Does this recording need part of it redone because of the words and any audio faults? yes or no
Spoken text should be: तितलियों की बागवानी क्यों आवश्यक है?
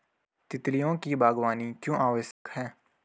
yes